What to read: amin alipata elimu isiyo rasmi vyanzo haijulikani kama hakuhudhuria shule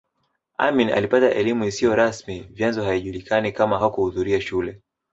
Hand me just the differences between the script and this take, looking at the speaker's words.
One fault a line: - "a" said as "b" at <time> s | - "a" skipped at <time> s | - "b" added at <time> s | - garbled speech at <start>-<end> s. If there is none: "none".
none